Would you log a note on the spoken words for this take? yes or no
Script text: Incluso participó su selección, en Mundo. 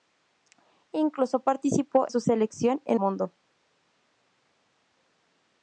no